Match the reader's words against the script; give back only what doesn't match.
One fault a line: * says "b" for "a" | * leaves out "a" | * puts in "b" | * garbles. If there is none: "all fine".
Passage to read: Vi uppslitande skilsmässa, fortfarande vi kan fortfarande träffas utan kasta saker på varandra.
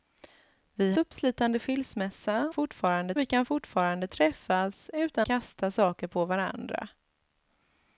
all fine